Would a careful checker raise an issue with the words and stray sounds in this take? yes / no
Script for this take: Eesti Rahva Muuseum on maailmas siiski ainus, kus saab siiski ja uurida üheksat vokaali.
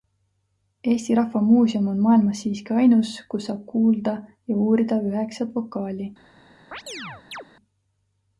yes